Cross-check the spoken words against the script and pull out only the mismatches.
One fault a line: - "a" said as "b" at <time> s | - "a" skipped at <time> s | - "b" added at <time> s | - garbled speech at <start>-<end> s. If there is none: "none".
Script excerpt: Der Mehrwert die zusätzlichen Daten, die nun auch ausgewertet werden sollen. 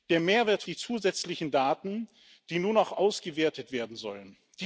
none